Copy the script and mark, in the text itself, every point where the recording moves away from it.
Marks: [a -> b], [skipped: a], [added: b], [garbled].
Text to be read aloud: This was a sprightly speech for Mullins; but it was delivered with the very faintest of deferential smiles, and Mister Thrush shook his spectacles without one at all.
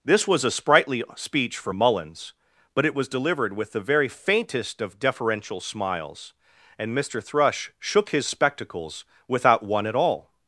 This was a sprightly speech for Mullins; but it was delivered with the very faintest of deferential smiles, and Mister Thrush shook his spectacles without one at all.